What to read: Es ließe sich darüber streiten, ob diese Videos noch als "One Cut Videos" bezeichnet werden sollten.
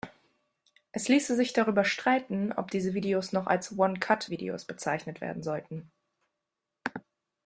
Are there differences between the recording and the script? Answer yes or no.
no